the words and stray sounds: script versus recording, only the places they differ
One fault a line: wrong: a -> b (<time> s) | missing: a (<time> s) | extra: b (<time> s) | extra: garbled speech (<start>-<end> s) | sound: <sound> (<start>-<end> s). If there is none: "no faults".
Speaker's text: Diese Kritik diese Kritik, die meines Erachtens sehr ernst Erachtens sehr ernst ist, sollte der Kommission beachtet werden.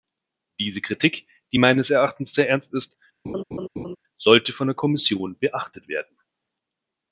missing: diese Kritik (1.3 s)
missing: Erachtens sehr ernst (2.7 s)
sound: laugh (3.2-4.0 s)
extra: von (4.5 s)